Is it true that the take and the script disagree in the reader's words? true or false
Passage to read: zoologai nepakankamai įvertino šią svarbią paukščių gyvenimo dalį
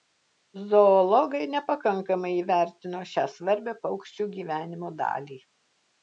false